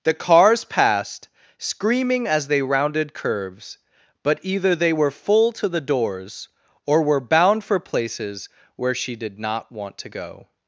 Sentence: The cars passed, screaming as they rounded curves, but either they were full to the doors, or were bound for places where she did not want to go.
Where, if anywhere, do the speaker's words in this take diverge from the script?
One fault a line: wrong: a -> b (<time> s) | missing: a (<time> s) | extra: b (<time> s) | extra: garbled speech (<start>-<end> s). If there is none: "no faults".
no faults